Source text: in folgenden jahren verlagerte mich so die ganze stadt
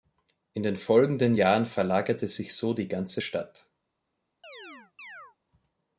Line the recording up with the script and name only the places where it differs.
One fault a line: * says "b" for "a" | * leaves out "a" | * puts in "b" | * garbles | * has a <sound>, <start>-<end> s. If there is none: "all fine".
* puts in "den"
* says "sich" for "mich"
* has a chirp, 4.4-5.4 s